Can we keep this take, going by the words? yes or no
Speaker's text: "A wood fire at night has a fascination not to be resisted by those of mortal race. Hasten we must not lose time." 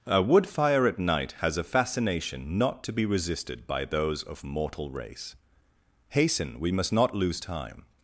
yes